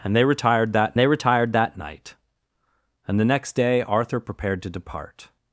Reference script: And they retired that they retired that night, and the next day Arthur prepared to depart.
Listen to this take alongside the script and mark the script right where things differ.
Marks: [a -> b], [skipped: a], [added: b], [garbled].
And they retired that they retired that night, and the next day Arthur prepared to depart.